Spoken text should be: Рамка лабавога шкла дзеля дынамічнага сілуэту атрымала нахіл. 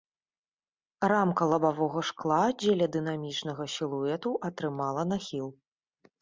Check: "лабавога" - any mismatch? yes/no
no